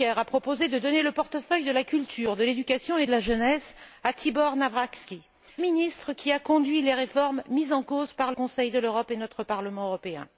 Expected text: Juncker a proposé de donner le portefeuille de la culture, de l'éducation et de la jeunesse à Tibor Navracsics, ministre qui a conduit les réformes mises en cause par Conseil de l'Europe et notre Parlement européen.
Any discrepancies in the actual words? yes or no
no